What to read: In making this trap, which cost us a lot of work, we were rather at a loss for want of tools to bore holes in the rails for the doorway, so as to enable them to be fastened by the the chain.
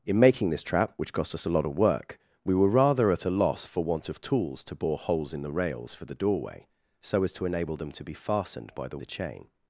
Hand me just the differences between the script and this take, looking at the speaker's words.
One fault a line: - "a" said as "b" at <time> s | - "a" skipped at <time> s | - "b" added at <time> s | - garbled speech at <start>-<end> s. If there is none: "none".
none